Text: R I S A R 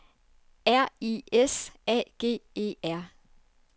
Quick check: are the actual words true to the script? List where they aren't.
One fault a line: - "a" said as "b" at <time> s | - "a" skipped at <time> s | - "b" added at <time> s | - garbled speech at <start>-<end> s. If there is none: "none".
- "G E" added at 2.2 s